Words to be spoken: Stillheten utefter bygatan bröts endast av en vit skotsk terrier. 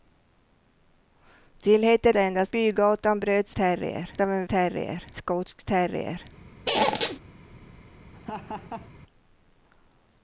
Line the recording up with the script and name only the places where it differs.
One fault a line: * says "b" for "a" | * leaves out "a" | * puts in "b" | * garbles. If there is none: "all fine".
* says "endast" for "utefter"
* says "terrier" for "endast"
* says "terrier" for "vit"